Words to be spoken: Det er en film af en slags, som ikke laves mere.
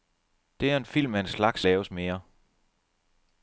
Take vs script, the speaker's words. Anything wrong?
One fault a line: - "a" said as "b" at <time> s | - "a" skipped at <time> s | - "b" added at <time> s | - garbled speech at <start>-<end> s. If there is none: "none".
- "som ikke" skipped at 1.6 s